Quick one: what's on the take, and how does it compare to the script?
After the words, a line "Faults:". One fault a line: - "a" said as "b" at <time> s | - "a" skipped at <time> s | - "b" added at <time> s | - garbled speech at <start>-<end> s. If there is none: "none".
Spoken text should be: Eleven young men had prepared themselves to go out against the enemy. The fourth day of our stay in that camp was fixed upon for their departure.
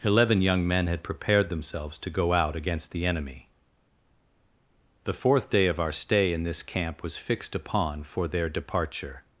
Eleven young men had prepared themselves to go out against the enemy. The fourth day of our stay in this camp was fixed upon for their departure.
Faults:
- "that" said as "this" at 6.4 s